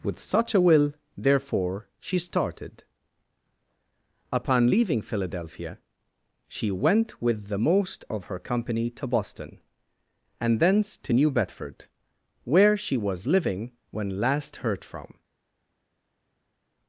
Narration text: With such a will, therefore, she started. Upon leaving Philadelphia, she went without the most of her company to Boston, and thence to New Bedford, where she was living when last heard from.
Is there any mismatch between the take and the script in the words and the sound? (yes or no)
yes